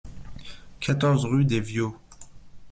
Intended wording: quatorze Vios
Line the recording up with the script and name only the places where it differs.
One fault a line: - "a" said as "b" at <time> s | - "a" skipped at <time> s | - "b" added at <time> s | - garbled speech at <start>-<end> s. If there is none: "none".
- "rue des" added at 1.2 s